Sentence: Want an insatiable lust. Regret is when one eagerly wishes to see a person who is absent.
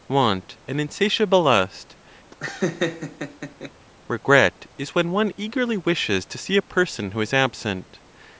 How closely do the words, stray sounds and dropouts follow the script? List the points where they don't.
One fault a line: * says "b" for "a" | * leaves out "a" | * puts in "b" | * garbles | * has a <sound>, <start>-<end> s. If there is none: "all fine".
* has a laugh, 2.3-3.7 s